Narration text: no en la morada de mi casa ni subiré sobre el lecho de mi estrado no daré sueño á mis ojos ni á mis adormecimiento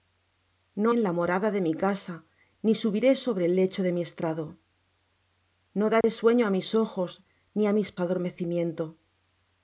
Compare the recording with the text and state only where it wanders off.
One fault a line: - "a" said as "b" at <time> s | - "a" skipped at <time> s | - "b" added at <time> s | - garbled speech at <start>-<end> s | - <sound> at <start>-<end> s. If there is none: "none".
- dropout at 6.0-6.0 s